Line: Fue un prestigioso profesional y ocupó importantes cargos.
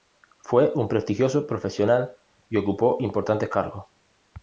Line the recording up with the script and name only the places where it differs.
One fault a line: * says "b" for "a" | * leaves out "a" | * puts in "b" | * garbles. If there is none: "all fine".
all fine